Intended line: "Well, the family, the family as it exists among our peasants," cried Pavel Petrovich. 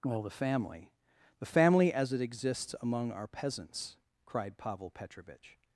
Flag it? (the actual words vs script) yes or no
no